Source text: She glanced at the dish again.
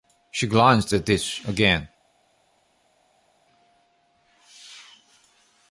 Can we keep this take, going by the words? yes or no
no